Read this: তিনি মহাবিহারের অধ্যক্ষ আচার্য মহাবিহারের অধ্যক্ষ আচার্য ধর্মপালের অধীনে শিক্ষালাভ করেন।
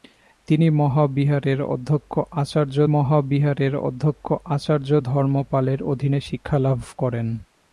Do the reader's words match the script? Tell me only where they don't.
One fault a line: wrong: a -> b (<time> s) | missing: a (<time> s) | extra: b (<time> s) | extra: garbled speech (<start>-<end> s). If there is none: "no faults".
no faults